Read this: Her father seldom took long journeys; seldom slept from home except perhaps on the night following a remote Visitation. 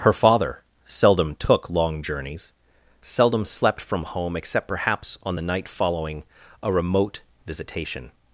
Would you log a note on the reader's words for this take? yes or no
no